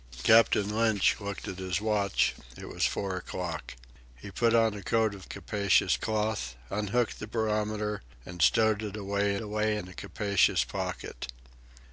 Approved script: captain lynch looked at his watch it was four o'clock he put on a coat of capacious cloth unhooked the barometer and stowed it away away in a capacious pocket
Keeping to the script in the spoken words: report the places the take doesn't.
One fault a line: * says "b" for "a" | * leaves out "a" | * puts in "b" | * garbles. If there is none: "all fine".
all fine